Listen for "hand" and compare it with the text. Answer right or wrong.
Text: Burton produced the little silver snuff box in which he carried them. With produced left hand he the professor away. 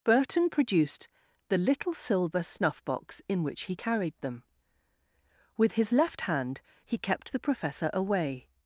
right